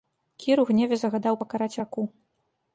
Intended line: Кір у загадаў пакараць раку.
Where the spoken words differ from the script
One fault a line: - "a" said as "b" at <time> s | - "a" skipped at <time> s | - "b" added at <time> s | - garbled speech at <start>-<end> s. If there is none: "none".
- "гневе" added at 0.7 s